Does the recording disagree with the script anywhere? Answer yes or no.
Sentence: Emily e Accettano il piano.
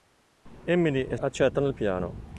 no